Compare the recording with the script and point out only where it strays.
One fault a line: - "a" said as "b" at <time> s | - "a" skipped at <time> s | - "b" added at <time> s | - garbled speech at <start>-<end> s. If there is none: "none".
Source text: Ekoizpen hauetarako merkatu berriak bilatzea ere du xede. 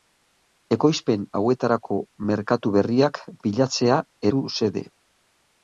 - "ere" skipped at 4.0 s